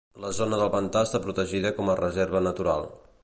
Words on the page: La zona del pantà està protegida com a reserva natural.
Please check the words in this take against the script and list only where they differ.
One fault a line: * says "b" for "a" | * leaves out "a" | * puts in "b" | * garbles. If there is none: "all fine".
all fine